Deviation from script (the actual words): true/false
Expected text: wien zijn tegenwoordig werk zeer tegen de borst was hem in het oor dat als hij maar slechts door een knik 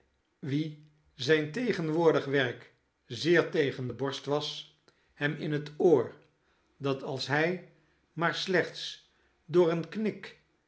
false